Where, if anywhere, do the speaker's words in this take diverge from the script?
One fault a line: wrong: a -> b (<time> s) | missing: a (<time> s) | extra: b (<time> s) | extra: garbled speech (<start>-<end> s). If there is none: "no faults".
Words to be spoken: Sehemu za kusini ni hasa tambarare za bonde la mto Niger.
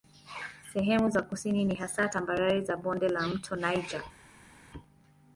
no faults